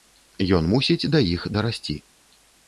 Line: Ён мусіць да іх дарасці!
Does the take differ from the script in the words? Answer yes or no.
no